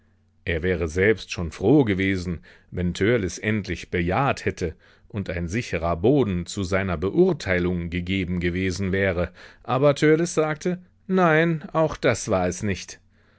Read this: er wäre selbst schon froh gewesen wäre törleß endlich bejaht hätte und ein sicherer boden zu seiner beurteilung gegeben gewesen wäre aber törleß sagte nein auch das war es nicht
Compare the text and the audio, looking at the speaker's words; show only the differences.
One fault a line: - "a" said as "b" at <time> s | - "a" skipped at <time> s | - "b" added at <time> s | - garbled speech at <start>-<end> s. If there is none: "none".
- "wäre" said as "wenn" at 2.7 s